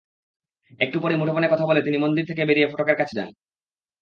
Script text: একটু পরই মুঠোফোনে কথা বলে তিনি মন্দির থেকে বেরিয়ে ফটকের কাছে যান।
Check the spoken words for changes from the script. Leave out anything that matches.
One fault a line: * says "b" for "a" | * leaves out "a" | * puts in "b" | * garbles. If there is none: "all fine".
all fine